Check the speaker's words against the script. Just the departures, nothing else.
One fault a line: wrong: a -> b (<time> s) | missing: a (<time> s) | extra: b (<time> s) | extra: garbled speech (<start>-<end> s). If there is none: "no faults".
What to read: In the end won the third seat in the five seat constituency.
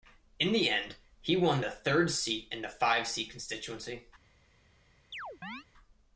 extra: he (1.2 s)